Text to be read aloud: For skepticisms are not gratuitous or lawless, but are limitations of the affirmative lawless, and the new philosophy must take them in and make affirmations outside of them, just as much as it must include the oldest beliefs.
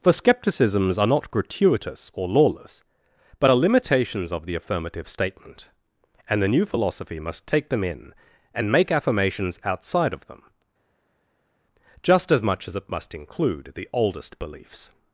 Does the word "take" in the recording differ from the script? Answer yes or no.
no